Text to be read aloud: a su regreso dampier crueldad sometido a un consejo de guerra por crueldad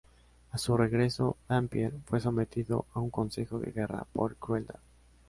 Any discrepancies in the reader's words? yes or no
yes